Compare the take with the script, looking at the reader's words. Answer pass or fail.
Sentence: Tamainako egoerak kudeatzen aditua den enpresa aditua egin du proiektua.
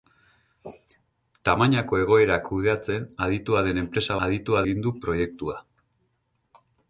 pass